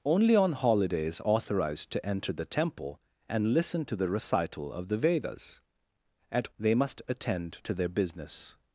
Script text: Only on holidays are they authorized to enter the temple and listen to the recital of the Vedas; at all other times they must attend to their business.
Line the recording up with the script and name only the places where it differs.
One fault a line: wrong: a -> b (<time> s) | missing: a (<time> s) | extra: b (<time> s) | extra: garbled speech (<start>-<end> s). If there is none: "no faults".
missing: are they (1.2 s)
missing: all other times (6.5 s)